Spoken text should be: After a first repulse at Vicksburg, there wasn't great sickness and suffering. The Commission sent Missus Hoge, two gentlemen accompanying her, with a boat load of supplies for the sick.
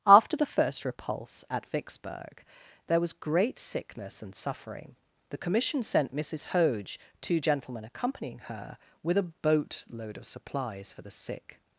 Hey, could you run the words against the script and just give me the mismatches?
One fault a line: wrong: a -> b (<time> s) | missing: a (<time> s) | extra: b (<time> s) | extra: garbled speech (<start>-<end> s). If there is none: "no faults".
wrong: a -> the (0.3 s)
wrong: wasn't -> was (3.0 s)